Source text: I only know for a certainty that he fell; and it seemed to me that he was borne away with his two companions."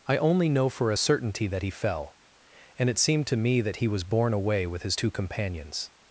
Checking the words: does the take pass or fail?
pass